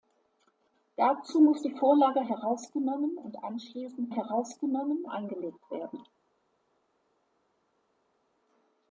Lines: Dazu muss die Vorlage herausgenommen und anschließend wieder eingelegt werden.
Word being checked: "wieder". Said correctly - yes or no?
no